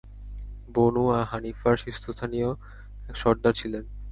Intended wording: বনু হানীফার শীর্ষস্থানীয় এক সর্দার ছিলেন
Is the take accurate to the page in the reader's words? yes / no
yes